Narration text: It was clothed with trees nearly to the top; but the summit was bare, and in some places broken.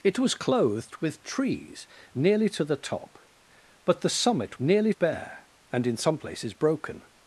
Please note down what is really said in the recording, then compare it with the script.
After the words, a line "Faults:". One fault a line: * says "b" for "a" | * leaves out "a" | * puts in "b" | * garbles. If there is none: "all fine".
It was clothed with trees nearly to the top; but the summit nearly bare, and in some places broken.
Faults:
* says "nearly" for "was"